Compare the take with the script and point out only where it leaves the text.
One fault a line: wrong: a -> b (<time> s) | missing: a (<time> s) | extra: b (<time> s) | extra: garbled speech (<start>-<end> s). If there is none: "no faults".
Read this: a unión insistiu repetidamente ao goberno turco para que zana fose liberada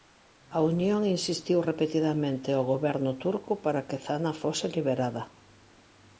no faults